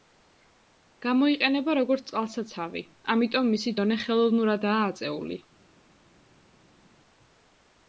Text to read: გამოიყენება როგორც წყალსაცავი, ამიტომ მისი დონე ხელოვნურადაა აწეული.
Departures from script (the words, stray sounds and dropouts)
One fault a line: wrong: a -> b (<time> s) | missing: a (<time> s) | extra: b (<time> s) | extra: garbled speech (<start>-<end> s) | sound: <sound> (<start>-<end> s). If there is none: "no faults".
no faults